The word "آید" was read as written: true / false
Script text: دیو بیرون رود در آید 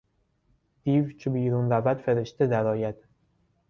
true